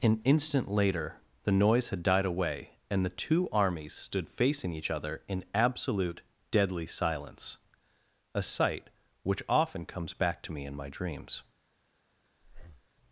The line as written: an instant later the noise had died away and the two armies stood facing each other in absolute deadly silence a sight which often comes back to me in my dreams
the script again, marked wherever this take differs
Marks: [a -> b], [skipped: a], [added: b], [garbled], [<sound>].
an instant later the noise had died away and the two armies stood facing each other in absolute deadly silence a sight which often comes back to me in my dreams [breath]